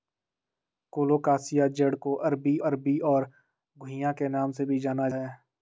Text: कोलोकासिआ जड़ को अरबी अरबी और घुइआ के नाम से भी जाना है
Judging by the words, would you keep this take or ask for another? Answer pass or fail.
pass